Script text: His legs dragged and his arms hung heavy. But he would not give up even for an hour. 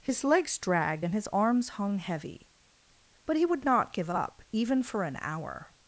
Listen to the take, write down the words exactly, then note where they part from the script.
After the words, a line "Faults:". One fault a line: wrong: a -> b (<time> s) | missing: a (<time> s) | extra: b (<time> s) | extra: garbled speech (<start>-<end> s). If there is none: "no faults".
His legs dragged and his arms hung heavy. But he would not give up even for an hour.
Faults:
no faults